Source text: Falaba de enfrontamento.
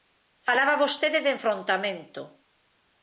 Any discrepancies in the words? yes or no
yes